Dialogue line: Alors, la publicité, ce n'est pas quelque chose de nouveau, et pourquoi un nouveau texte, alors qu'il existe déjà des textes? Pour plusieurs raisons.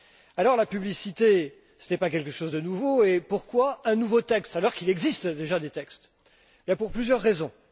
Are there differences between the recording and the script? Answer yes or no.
no